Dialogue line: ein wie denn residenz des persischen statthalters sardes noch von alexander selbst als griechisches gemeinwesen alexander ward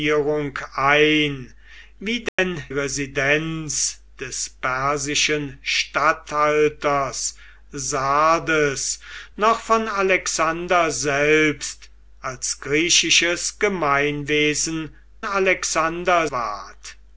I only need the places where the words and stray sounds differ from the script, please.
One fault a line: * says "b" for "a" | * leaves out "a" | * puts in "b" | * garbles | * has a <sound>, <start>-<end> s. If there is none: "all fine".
* has a dropout, 2.3-2.4 s